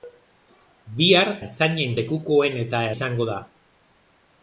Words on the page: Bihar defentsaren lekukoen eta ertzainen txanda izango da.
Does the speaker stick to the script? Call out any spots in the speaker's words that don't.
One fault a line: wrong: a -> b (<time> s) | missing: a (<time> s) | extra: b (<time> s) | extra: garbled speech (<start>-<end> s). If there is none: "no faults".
wrong: defentsaren -> ertzainen (1.4 s)
missing: ertzainen txanda (2.8 s)